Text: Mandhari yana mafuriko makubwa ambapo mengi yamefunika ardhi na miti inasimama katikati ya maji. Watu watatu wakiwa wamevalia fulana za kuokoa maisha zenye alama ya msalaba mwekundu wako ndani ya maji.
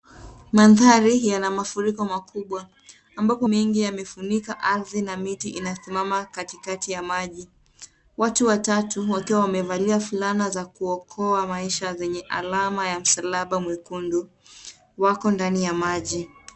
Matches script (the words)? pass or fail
pass